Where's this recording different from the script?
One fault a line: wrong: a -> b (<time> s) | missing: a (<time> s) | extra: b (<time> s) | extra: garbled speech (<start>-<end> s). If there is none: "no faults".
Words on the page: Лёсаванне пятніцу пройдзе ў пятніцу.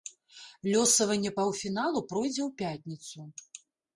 wrong: пятніцу -> паўфіналу (1.4 s)